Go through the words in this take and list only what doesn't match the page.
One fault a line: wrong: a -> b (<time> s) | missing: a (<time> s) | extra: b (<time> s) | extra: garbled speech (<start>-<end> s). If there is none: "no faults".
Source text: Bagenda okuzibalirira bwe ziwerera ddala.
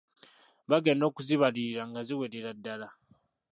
wrong: bwe -> nga (1.9 s)